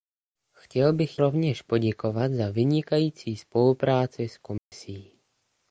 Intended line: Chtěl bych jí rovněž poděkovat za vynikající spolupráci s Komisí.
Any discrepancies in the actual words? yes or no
yes